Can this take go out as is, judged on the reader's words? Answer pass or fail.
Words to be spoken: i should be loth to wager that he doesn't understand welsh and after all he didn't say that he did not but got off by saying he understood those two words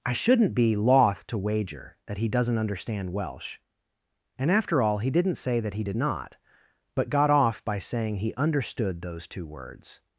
fail